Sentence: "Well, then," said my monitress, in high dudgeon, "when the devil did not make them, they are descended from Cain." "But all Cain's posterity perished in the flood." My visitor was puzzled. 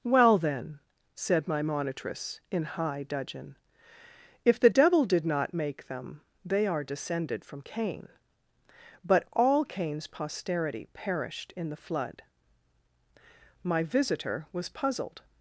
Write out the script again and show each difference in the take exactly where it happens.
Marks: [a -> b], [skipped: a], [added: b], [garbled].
"Well, then," said my monitress, in high dudgeon, ["when -> if] the devil did not make them, they are descended from Cain." "But all Cain's posterity perished in the flood." My visitor was puzzled.